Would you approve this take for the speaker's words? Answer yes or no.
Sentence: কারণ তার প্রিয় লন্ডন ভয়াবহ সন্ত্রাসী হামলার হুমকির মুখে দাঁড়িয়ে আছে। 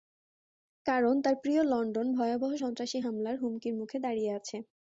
yes